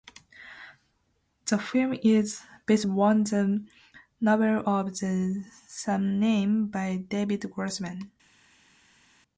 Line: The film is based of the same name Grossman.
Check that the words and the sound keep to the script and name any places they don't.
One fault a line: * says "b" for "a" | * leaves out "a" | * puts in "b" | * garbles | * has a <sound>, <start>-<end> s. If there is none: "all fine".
* puts in "on the novel"
* puts in "by David"